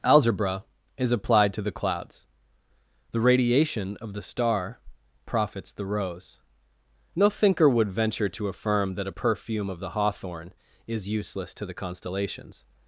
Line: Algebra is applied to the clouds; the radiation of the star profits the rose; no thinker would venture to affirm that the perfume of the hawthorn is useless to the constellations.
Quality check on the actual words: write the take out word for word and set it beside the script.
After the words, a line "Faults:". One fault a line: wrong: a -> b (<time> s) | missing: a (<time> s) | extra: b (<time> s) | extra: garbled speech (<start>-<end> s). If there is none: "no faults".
Algebra is applied to the clouds; the radiation of the star profits the rose; no thinker would venture to affirm that a perfume of the hawthorn is useless to the constellations.
Faults:
wrong: the -> a (9.1 s)